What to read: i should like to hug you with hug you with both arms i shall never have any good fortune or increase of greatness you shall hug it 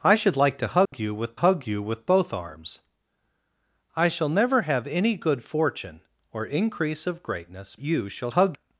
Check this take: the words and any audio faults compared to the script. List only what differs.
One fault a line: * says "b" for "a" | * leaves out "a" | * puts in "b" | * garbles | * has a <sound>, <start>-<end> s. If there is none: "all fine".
* has a dropout, 0.9-0.9 s